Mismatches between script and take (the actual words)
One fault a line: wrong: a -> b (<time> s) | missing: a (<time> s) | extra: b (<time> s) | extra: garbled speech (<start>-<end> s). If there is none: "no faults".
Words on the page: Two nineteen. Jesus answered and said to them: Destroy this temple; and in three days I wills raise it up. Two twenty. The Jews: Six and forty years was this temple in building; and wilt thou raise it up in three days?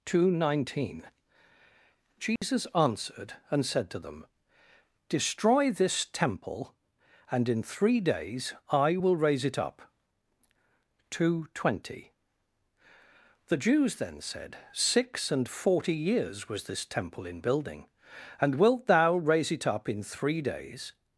wrong: wills -> will (8.9 s)
extra: then said (14.0 s)